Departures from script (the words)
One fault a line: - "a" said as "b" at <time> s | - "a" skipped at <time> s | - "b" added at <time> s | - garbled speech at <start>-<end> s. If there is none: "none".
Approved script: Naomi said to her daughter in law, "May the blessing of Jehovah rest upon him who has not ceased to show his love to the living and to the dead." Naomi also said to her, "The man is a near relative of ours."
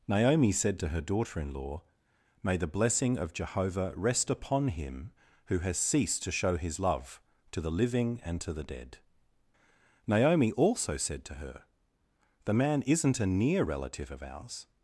- "not" skipped at 5.8 s
- "is" said as "isn't" at 12.8 s